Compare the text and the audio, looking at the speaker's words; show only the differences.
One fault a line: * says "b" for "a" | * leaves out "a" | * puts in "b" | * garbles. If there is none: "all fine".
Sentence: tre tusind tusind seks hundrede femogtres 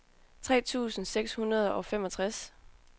* leaves out "tusind"
* puts in "og"